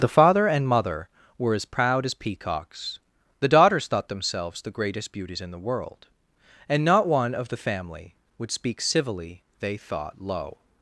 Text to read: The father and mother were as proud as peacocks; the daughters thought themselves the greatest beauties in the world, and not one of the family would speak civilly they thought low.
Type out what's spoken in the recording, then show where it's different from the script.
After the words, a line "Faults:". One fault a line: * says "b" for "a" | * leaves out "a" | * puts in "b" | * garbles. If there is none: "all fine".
The father and mother were as proud as peacocks; the daughters thought themselves the greatest beauties in the world, and not one of the family would speak civilly they thought low.
Faults:
all fine